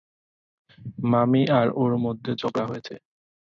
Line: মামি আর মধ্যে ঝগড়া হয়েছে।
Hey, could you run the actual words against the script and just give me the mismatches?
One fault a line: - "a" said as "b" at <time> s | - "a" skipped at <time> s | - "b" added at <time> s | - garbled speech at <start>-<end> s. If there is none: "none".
- "ওর" added at 1.8 s